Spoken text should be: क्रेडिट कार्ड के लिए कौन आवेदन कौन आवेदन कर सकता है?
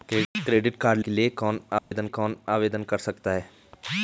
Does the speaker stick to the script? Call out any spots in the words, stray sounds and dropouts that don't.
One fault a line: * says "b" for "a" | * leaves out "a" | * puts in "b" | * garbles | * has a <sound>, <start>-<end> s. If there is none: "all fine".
* has a dropout, 1.8-1.9 s